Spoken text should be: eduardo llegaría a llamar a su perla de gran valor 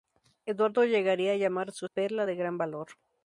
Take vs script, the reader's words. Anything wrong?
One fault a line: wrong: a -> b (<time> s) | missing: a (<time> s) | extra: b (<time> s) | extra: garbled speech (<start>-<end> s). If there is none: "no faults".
no faults